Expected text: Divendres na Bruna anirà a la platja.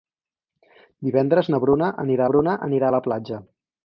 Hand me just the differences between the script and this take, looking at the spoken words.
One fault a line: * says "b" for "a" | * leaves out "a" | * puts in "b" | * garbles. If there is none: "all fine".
* puts in "Bruna anirà"